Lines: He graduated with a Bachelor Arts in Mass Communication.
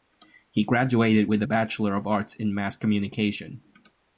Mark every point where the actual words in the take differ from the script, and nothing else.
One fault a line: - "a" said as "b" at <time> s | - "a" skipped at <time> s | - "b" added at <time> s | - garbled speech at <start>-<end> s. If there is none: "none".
- "of" added at 1.9 s